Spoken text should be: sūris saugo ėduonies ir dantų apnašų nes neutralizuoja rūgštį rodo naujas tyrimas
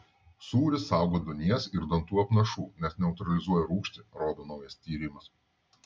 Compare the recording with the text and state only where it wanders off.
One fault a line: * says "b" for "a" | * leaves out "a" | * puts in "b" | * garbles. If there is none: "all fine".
all fine